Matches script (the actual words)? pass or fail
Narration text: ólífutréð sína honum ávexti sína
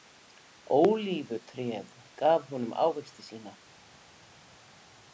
fail